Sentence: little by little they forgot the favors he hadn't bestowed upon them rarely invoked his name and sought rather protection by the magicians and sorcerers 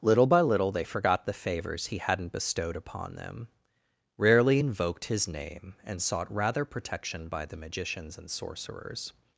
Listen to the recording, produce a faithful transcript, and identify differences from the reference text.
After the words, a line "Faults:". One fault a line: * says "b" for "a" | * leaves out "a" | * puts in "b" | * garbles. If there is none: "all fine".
little by little they forgot the favors he hadn't bestowed upon them rarely invoked his name and sought rather protection by the magicians and sorcerers
Faults:
all fine